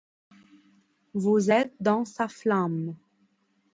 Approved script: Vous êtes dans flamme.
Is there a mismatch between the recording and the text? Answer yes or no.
yes